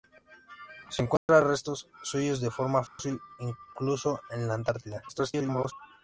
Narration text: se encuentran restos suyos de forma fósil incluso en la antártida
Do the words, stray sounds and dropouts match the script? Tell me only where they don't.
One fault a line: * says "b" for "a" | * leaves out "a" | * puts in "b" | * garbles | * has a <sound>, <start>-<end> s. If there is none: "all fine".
* has a dropout, 1.2-1.3 s
* has a dropout, 2.9-3.0 s
* garbles